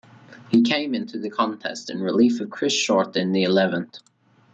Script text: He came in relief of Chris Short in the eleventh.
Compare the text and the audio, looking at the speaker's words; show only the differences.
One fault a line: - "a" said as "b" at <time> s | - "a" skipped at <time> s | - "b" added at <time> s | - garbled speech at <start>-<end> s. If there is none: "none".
- "into the contest" added at 0.9 s